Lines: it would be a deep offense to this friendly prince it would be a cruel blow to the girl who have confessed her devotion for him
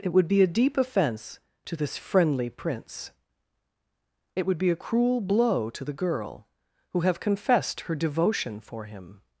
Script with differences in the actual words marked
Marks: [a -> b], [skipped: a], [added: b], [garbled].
it would be a deep offense to this friendly prince it would be a cruel blow to the girl who have confessed her devotion for him